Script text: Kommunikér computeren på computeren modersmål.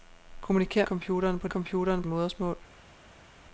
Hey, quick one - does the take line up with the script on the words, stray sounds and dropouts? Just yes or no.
yes